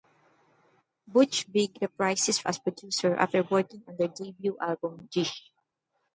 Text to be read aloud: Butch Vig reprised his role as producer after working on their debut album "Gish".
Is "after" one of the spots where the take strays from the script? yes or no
no